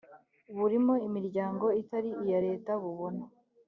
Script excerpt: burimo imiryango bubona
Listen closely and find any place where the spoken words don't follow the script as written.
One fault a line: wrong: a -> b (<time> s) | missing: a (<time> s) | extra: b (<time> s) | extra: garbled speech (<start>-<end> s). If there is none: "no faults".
extra: itari iya leta (1.8 s)